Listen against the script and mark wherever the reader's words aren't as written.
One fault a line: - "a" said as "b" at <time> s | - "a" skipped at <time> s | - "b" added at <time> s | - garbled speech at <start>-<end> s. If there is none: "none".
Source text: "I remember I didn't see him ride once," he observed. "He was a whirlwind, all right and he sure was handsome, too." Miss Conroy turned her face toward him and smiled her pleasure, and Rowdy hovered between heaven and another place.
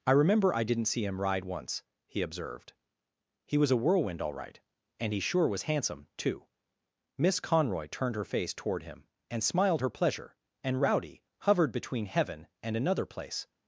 none